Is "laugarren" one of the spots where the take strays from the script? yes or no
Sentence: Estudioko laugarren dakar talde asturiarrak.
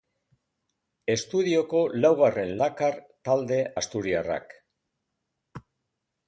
no